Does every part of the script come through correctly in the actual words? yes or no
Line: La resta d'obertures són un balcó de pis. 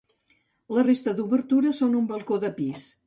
yes